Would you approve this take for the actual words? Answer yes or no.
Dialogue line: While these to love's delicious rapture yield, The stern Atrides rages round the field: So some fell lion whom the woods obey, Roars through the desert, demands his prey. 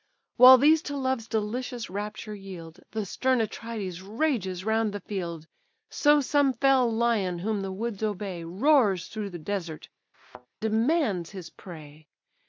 yes